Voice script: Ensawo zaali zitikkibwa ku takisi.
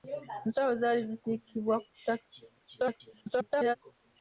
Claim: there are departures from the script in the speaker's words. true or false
true